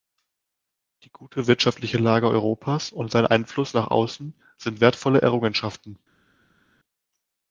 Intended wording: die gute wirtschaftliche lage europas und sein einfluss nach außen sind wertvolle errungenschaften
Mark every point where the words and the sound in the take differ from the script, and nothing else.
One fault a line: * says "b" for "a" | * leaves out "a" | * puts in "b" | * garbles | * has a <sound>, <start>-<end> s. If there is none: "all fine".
all fine